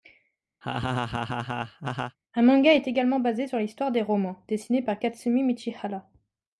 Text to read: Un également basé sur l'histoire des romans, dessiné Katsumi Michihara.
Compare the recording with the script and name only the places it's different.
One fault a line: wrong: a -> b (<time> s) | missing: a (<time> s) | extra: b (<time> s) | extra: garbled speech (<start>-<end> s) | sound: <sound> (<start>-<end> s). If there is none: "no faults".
sound: laugh (0.6-2.2 s)
extra: manga est (2.4 s)
extra: par (4.8 s)